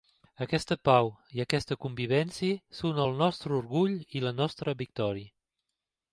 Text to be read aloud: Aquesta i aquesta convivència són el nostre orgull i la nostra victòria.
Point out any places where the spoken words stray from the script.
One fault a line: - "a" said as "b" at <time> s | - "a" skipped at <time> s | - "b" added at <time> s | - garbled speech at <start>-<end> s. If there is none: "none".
- "pau" added at 0.9 s